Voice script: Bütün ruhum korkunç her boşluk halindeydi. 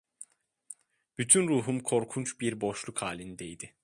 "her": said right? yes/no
no